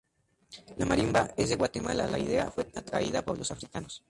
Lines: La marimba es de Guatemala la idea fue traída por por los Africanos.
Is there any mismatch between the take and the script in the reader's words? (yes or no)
yes